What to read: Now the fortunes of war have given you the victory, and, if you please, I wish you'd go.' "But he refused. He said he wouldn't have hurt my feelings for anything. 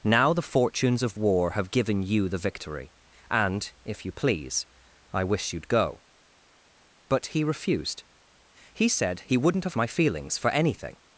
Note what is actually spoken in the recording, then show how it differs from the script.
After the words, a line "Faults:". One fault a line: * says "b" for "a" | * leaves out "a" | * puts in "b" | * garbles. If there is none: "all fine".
Now the fortunes of war have given you the victory, and, if you please, I wish you'd go.' "But he refused. He said he wouldn't have my feelings for anything.
Faults:
* leaves out "hurt"